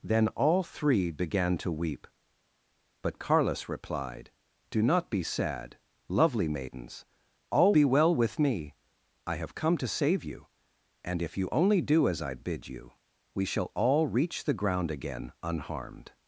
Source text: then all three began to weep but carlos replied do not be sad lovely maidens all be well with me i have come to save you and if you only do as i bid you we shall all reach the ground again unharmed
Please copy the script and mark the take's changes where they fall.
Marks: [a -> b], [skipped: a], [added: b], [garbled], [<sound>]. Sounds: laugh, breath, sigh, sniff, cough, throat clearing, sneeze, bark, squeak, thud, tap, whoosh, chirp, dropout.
then all three began to weep but carlos replied do not be sad lovely maidens all be well with me i have come to save you and if you only do as i bid you we shall all reach the ground again unharmed